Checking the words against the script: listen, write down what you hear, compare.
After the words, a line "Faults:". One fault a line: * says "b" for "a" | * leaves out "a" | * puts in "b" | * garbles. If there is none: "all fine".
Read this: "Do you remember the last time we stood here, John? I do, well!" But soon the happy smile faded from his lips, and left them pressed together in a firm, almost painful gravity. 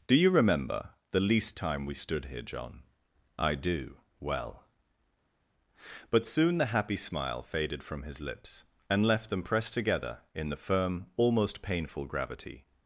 "Do you remember the least time we stood here, John? I do, well!" But soon the happy smile faded from his lips, and left them pressed together in the firm, almost painful gravity.
Faults:
* says "least" for "last"
* says "the" for "a"